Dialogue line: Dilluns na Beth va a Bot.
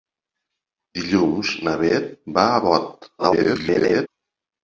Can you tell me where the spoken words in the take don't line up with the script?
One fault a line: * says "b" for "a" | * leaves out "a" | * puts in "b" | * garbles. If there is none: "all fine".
* garbles